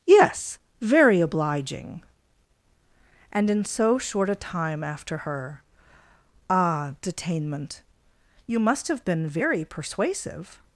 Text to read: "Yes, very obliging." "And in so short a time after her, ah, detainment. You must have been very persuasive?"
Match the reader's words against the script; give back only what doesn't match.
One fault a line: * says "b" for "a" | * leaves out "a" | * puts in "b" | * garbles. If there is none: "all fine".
all fine